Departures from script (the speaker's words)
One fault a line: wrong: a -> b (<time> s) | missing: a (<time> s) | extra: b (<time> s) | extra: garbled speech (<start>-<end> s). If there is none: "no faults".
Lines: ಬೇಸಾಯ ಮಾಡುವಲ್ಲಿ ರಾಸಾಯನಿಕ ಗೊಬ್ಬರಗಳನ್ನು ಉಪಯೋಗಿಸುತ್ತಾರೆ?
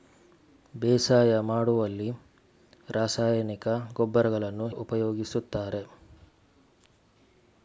no faults